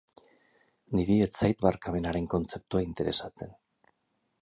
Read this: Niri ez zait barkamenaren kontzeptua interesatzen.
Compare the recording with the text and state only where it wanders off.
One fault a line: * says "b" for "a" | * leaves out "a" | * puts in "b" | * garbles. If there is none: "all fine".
all fine